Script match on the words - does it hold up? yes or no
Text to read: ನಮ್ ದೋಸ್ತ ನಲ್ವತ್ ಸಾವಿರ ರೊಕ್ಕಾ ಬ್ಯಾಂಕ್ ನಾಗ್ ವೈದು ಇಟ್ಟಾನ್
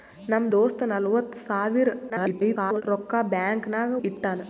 no